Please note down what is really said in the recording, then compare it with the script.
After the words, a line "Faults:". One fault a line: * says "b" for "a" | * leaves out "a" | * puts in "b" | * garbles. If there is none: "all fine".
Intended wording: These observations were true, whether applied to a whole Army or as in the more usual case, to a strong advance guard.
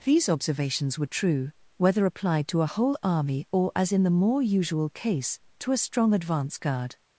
These observations were true, whether applied to a whole Army or as in the more usual case, to a strong advance guard.
Faults:
all fine